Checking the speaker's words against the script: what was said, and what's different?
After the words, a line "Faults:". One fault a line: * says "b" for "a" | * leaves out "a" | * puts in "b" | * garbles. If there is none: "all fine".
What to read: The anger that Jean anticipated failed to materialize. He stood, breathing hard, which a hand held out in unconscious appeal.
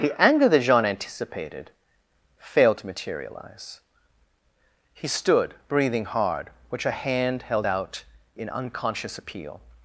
The anger that Jean anticipated failed to materialize. He stood, breathing hard, which a hand held out in unconscious appeal.
Faults:
all fine